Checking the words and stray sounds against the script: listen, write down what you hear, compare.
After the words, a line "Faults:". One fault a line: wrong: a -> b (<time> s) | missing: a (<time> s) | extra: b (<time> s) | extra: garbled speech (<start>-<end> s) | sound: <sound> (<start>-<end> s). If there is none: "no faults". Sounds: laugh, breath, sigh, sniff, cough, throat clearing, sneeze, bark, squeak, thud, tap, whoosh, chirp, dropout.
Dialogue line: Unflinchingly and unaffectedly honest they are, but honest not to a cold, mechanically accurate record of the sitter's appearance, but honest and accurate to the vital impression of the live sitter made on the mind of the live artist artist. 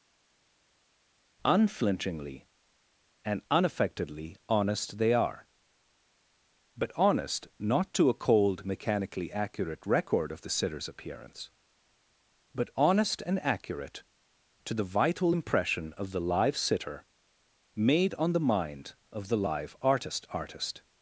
Unflinchingly and unaffectedly honest they are, but honest not to a cold, mechanically accurate record of the sitter's appearance, but honest and accurate to the vital impression of the live sitter made on the mind of the live artist artist.
Faults:
no faults